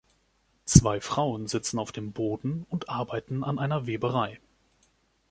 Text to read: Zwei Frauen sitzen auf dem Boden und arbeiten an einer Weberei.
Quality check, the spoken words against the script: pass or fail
pass